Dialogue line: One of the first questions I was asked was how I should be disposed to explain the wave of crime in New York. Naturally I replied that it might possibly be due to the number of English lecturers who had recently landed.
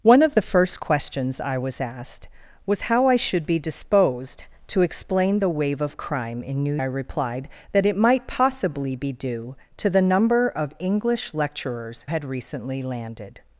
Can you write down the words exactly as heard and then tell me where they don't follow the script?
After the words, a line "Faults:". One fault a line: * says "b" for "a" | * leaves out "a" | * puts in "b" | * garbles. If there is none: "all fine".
One of the first questions I was asked was how I should be disposed to explain the wave of crime in New I replied that it might possibly be due to the number of English lecturers had recently landed.
Faults:
* leaves out "York Naturally"
* leaves out "who"